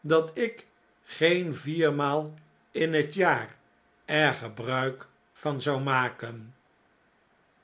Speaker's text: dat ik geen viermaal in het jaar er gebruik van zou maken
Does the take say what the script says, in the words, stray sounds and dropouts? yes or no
yes